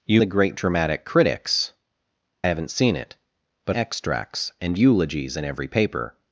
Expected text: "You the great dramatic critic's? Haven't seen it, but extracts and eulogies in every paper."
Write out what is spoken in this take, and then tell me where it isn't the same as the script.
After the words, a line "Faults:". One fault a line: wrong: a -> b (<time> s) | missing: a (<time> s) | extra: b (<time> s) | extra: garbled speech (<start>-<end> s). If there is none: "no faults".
"You the great dramatic critic's? Haven't seen it, but extracts and eulogies in every paper."
Faults:
no faults